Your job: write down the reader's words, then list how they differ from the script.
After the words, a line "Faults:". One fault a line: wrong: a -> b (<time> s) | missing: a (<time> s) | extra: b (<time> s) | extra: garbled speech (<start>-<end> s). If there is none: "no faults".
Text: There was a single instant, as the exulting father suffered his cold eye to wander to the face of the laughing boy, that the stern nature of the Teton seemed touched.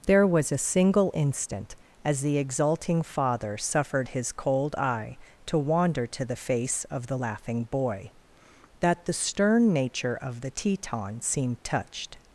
There was a single instant, as the exulting father suffered his cold eye to wander to the face of the laughing boy, that the stern nature of the Teton seemed touched.
Faults:
no faults